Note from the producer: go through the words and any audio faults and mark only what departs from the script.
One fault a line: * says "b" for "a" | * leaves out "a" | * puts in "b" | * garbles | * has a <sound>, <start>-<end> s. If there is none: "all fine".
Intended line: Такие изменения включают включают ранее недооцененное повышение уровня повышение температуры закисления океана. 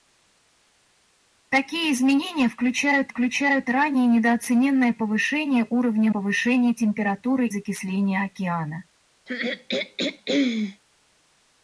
* has a throat clearing, 9.3-10.8 s